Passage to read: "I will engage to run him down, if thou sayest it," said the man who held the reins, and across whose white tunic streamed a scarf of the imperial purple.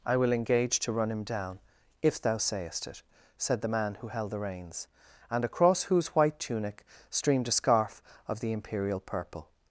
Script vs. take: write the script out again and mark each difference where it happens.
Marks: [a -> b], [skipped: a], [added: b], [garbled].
"I will engage to run him down, if thou sayest it," said the man who held the reins, and across whose white tunic streamed a scarf of the imperial purple.